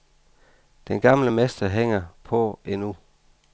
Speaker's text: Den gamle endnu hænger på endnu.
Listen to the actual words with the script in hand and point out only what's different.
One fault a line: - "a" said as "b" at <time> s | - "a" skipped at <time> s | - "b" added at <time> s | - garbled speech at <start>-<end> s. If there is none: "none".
- "endnu" said as "mester" at 1.3 s